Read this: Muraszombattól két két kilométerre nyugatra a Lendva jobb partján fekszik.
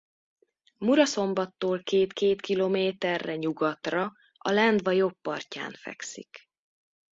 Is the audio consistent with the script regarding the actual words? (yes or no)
yes